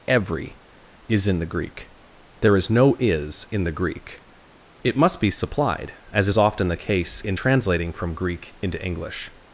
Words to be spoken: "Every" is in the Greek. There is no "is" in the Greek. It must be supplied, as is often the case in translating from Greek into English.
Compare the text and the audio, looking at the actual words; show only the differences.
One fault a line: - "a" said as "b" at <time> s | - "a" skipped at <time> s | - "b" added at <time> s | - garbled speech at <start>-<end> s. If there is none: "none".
none